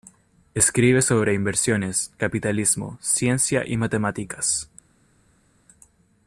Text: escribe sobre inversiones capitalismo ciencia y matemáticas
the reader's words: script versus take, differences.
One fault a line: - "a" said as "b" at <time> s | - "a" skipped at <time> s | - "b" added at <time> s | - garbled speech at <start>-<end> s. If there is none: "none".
none